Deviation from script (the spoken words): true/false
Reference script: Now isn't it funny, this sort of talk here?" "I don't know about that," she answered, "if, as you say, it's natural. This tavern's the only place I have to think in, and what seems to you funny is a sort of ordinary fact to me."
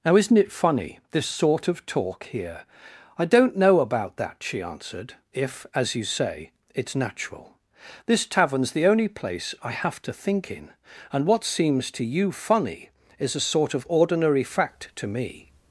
false